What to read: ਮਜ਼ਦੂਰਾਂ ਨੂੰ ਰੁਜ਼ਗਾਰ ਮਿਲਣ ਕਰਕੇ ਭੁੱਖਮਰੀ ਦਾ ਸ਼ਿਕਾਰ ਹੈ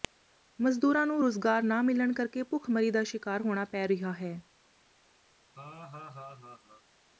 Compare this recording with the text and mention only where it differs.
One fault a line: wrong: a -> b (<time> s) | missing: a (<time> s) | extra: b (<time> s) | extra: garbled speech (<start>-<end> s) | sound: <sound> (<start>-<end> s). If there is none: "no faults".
extra: ਨਾ (1.6 s)
extra: ਹੋਣਾ ਪੈ ਰਿਹਾ (3.4 s)
sound: laugh (5.6-6.8 s)